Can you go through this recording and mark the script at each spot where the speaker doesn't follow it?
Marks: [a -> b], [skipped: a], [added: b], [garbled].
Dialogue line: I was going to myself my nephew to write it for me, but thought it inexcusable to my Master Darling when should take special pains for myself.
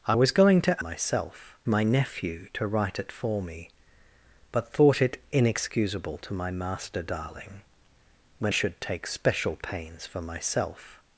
I was going to myself my nephew to write it for me, but thought it inexcusable to my Master Darling when should take special pains for myself.